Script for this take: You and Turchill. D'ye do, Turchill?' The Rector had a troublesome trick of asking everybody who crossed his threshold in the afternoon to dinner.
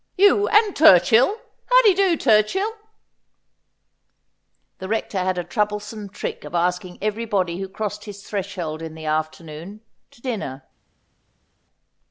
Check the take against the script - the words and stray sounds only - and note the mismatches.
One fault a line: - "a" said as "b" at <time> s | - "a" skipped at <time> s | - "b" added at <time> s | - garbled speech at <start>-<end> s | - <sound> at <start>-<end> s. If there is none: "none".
- "How" added at 1.7 s